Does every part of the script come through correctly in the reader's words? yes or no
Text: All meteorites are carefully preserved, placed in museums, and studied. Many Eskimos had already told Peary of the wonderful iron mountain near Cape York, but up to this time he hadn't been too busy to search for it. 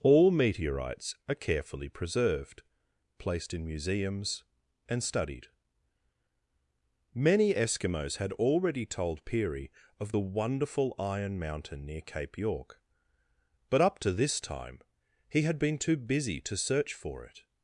no